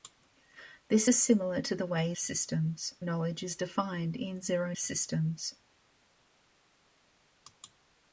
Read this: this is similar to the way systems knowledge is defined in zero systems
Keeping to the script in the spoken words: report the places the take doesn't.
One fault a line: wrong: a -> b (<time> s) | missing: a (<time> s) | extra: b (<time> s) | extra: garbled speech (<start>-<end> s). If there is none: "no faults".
no faults